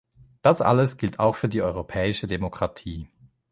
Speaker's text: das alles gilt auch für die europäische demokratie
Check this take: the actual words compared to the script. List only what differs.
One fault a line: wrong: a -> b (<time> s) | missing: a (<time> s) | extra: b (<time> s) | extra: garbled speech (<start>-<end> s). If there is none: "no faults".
no faults